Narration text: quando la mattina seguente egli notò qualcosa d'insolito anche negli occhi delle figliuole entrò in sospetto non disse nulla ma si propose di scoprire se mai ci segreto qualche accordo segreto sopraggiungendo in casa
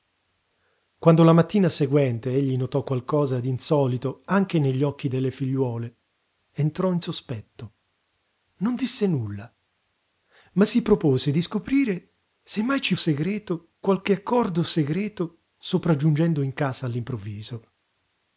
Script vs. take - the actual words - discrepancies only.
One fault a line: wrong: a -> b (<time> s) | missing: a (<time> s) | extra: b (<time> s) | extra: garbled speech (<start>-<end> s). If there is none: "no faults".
no faults